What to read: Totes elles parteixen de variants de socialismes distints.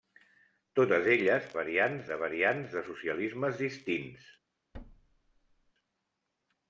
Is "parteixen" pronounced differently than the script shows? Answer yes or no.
yes